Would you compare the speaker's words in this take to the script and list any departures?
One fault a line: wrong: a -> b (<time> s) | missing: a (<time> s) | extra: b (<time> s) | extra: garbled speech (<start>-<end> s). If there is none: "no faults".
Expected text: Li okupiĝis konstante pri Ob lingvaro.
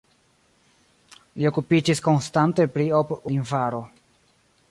no faults